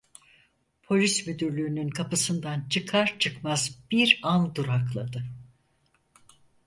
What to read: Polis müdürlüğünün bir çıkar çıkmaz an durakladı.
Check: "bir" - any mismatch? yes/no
yes